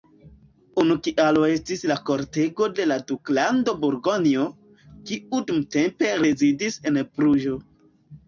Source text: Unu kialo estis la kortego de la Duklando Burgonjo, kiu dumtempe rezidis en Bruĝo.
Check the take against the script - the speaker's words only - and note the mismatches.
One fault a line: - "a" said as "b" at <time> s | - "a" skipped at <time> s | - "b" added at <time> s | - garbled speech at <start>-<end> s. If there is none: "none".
none